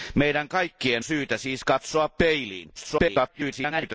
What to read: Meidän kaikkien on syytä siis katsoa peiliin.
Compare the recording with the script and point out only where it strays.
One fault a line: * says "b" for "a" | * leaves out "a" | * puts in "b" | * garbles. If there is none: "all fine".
* leaves out "on"
* garbles